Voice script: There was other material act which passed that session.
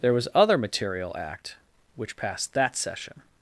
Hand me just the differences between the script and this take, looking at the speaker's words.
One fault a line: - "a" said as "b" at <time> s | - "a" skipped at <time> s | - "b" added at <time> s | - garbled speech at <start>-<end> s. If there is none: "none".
none